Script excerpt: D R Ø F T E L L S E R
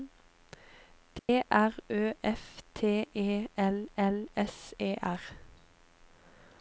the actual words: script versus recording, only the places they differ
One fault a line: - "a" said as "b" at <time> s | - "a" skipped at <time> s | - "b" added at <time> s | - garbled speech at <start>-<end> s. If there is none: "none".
none